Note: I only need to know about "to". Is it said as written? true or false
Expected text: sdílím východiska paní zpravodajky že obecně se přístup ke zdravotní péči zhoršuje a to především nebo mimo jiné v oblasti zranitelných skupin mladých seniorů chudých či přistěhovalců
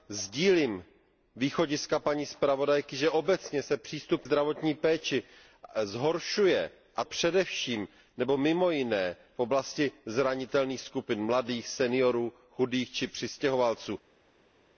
false